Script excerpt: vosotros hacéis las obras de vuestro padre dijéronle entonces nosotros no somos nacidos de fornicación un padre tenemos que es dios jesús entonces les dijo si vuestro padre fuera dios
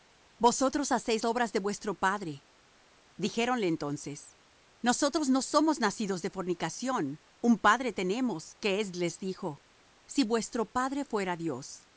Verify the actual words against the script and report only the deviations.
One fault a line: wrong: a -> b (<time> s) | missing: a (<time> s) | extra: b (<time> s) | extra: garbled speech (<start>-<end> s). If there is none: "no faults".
missing: las (1.2 s)
missing: dios jesús entonces (8.9 s)